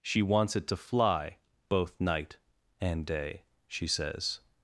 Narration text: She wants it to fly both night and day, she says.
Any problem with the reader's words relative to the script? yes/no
no